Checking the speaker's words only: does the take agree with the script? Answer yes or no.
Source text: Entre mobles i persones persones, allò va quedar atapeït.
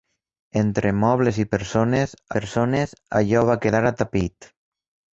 yes